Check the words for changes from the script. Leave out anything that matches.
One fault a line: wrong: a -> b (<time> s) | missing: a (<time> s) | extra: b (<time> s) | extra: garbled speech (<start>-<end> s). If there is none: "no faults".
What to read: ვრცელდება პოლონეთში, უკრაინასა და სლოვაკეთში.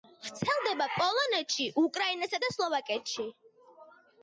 no faults